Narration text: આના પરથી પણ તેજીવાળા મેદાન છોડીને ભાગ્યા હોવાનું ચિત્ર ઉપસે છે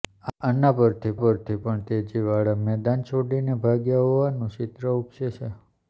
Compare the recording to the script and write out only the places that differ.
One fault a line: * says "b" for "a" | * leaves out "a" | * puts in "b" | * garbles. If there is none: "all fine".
* puts in "પરથી"